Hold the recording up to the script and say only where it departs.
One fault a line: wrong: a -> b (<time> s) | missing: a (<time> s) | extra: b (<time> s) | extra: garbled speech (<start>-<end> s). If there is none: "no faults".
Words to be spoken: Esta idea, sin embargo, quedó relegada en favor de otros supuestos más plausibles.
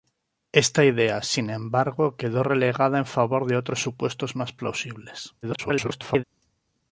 extra: garbled speech (5.4-6.2 s)